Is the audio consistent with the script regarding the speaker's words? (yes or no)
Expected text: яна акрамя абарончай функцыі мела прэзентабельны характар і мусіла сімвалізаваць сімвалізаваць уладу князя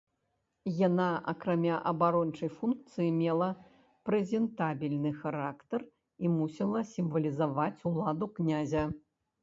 no